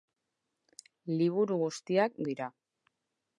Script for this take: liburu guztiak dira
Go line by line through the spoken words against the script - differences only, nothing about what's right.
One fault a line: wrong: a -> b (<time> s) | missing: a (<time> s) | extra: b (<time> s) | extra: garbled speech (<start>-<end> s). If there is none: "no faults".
no faults